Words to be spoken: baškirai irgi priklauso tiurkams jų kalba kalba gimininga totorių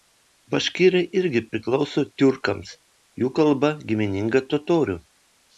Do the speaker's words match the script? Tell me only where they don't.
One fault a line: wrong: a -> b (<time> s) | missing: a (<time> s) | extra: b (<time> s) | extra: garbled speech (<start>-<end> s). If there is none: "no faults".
missing: kalba (3.7 s)